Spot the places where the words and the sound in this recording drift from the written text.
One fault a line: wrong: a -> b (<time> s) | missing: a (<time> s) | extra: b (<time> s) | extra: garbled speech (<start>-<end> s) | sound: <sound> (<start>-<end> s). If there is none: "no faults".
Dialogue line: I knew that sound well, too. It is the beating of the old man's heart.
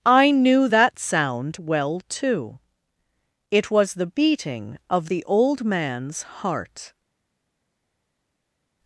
wrong: is -> was (3.7 s)